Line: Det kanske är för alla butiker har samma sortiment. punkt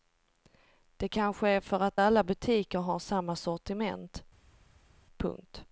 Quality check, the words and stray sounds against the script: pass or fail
fail